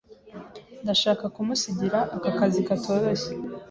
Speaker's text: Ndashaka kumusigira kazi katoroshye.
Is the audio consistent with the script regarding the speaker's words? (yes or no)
no